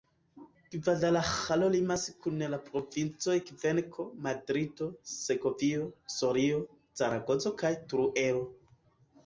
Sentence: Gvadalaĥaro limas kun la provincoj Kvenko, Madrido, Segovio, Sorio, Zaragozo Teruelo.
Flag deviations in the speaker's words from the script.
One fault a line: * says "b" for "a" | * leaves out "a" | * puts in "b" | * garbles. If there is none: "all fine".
* puts in "kaj"